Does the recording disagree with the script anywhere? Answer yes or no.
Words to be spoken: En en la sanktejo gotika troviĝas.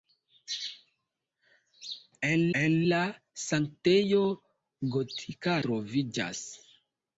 no